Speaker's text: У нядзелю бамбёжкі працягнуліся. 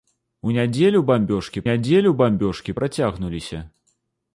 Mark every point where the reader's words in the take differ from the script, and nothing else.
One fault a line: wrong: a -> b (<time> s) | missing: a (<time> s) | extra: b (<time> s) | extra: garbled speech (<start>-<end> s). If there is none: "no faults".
extra: нядзелю бамбёжкі (1.7 s)